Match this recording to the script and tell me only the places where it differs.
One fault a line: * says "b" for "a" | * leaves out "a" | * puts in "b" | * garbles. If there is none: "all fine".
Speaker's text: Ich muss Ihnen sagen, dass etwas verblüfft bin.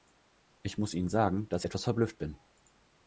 all fine